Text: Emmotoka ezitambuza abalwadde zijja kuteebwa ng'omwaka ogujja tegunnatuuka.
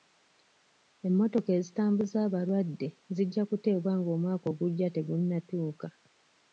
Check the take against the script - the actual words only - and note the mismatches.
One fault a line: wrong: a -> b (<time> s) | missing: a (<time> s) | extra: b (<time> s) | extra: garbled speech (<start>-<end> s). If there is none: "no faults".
no faults